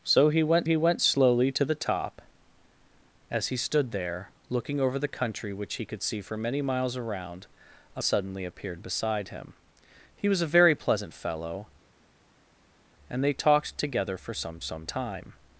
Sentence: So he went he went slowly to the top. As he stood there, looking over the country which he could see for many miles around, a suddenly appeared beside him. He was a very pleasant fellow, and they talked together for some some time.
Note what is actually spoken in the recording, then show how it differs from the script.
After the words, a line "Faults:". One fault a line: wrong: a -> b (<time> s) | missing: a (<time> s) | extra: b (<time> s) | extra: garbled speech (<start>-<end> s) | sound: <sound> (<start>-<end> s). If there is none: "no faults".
So he went he went slowly to the top. As he stood there, looking over the country which he could see for many miles around, a suddenly appeared beside him. He was a very pleasant fellow, and they talked together for some some time.
Faults:
no faults